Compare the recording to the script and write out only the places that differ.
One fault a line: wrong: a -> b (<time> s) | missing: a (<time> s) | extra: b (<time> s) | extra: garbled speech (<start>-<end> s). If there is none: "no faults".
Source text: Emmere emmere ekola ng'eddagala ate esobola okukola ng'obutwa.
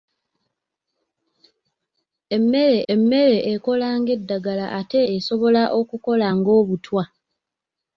no faults